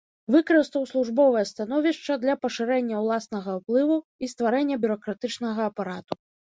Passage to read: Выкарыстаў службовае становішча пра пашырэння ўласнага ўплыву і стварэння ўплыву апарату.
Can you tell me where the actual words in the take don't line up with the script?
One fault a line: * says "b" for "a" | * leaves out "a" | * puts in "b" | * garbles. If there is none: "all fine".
* says "для" for "пра"
* says "бюракратычнага" for "ўплыву"